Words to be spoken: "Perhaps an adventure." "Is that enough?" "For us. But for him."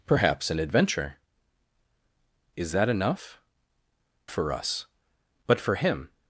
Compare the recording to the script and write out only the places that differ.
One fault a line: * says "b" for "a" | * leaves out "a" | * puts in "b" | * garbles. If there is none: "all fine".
all fine